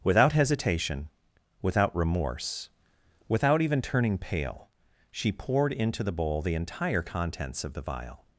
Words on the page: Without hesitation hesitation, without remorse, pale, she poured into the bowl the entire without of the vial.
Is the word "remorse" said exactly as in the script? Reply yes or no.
no